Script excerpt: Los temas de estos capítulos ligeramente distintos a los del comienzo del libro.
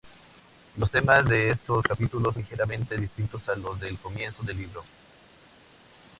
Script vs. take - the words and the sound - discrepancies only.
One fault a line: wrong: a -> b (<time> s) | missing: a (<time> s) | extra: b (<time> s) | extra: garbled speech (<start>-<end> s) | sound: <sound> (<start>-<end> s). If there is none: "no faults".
no faults